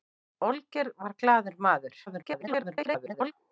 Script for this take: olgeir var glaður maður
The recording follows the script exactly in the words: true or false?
false